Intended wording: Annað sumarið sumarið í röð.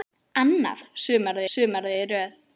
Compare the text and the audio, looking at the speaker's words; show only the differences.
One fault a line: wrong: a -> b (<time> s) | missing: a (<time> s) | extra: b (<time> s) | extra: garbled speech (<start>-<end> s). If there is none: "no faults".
no faults